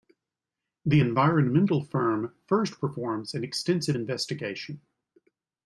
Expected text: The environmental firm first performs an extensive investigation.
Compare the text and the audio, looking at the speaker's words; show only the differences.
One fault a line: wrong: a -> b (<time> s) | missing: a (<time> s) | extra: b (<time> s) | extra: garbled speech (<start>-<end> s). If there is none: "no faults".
no faults